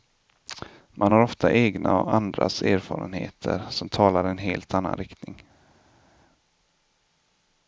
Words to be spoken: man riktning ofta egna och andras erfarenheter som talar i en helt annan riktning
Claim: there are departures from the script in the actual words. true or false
true